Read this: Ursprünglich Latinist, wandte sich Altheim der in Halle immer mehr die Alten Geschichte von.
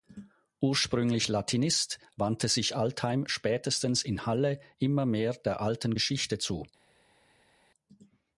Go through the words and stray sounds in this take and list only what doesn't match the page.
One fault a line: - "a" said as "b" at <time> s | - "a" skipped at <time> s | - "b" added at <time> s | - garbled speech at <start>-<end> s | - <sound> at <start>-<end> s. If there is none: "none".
- "der" said as "spätestens" at 3.3 s
- "die" said as "der" at 5.3 s
- "von" said as "zu" at 6.4 s